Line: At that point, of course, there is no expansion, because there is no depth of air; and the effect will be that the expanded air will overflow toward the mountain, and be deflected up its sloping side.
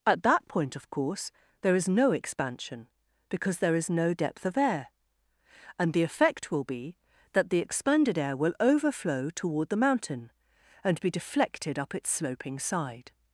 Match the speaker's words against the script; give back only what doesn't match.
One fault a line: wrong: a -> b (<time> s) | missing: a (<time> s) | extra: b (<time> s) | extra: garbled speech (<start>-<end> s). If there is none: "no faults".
no faults